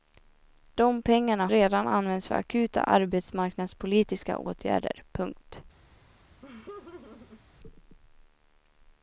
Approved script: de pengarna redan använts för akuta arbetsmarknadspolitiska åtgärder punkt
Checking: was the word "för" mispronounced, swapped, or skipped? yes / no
no